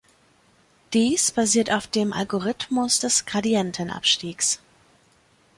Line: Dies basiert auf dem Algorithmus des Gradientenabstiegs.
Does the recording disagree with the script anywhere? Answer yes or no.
no